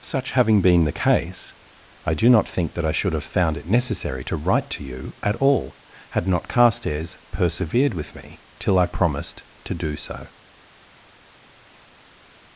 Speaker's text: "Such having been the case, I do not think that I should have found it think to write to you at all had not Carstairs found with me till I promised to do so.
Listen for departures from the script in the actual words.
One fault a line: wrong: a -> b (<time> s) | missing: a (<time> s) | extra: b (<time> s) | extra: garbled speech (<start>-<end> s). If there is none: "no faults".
wrong: think -> necessary (3.7 s)
wrong: found -> persevered (7.3 s)